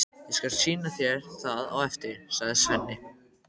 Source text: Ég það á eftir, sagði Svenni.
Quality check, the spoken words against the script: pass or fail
fail